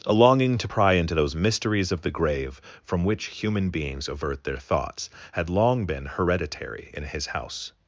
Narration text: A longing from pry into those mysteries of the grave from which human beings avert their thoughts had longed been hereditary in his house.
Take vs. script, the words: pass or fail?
fail